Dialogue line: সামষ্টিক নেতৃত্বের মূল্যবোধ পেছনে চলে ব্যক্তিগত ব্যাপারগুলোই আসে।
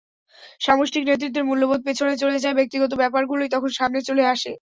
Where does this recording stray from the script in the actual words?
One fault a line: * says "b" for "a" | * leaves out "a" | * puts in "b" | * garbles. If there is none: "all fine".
* puts in "যায়"
* puts in "তখন সামনে চলে"